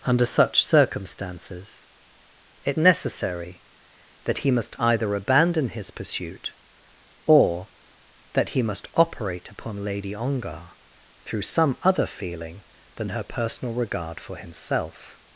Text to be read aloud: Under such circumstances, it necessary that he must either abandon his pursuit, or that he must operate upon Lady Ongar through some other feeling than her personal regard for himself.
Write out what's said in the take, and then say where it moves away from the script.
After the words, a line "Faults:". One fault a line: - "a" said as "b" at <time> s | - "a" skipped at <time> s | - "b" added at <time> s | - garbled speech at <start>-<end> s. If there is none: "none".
Under such circumstances, it necessary that he must either abandon his pursuit, or that he must operate upon Lady Ongar through some other feeling than her personal regard for himself.
Faults:
none